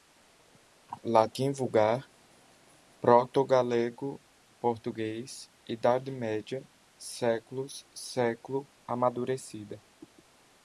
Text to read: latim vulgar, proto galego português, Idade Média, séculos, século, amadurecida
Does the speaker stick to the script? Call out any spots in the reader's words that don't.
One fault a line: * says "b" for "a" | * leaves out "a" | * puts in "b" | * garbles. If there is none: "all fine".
all fine